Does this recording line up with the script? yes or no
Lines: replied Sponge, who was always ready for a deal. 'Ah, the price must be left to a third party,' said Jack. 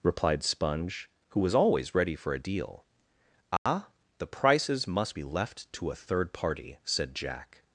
no